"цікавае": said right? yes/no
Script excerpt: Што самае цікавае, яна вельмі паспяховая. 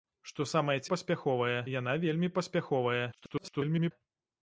no